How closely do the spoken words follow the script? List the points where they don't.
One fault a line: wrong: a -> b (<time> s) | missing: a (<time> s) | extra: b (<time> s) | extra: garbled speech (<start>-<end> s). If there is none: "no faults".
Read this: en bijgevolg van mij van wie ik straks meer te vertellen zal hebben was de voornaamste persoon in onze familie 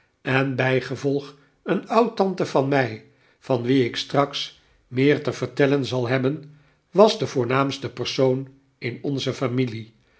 extra: een oudtante (1.6 s)